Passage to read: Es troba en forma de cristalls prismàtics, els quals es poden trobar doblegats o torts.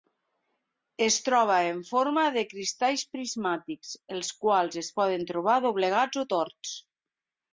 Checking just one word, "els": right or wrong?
right